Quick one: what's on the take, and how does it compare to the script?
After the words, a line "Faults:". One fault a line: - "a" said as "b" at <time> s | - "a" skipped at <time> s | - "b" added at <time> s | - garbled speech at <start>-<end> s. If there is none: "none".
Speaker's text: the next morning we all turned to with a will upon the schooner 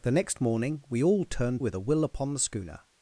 the next morning we all turned with a will upon the schooner
Faults:
- "to" skipped at 1.6 s